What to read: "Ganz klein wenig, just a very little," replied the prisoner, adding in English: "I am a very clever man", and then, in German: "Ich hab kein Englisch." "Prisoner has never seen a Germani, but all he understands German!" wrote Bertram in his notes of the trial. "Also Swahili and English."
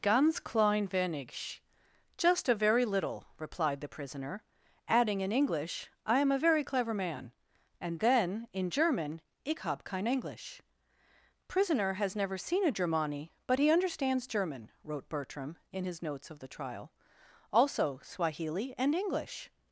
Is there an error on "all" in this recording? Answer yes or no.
yes